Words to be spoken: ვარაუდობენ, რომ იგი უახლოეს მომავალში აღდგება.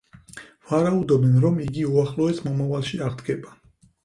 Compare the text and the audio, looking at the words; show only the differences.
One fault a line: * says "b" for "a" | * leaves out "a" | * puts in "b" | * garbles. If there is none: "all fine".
all fine